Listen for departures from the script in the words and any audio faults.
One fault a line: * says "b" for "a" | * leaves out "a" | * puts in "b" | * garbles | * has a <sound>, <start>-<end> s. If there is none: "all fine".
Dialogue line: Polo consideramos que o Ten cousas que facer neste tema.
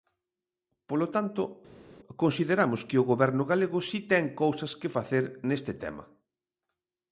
* puts in "tanto"
* puts in "Goberno galego si"